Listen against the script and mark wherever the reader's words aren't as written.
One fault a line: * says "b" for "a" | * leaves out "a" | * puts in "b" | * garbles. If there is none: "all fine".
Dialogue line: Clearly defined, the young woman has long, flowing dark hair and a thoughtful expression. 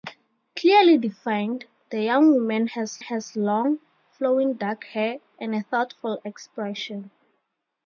* puts in "has"